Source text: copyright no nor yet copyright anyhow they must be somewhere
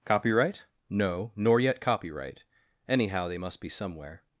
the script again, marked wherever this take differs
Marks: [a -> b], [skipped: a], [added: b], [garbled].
copyright no nor yet copyright anyhow they must be somewhere